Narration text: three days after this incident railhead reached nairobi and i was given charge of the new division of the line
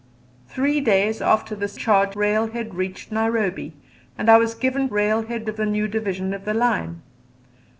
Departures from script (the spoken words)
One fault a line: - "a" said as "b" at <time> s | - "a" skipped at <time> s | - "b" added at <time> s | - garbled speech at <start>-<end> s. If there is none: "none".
- "incident" said as "charge" at 1.7 s
- "charge" said as "railhead" at 4.9 s